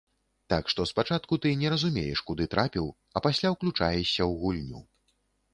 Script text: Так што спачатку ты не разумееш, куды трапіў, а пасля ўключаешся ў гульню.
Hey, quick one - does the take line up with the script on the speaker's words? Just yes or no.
yes